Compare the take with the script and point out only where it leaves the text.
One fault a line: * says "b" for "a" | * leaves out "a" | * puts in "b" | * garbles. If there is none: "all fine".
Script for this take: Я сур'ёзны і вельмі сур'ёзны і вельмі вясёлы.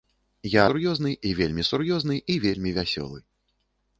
all fine